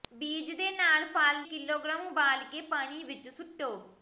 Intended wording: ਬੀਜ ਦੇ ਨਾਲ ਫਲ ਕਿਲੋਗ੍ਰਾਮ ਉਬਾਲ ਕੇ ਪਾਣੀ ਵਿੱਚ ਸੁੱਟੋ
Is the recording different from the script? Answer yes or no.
no